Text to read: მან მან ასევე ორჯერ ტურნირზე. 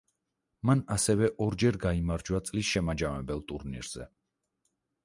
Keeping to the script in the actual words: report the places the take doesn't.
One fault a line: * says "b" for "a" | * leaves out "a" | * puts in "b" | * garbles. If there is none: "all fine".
* leaves out "მან"
* puts in "გაიმარჯვა წლის შემაჯამებელ"